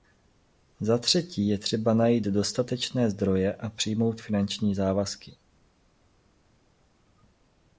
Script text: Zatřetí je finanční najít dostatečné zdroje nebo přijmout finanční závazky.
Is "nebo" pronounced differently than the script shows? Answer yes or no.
yes